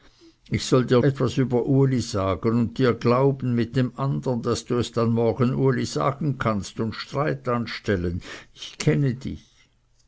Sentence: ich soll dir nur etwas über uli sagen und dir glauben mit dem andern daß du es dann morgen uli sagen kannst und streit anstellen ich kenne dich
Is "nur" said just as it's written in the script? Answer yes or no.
no